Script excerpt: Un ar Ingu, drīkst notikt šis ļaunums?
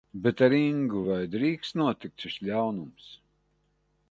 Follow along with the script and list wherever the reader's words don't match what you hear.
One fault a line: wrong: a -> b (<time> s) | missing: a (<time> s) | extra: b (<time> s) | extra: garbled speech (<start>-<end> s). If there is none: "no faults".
wrong: Un -> Bet (0.2 s)
extra: vai (1.1 s)